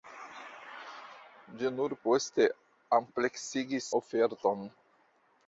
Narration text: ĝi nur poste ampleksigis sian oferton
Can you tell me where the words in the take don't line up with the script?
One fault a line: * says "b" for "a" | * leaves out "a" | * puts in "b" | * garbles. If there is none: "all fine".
* leaves out "sian"